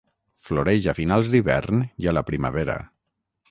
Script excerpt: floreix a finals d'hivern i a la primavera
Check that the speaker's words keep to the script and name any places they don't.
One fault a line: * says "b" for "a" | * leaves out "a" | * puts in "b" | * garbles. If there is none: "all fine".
all fine